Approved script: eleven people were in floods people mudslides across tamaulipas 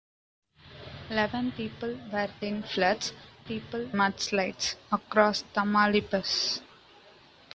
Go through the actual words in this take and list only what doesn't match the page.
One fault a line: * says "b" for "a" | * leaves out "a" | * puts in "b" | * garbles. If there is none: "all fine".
all fine